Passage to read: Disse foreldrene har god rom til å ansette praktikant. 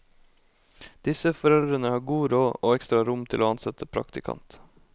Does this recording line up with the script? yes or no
no